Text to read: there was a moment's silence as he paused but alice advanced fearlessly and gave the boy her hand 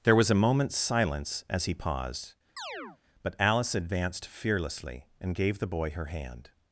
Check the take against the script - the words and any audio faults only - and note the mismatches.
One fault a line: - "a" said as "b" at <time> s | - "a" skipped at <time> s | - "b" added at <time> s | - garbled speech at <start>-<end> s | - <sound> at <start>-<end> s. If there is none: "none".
- chirp at 2.6-3.0 s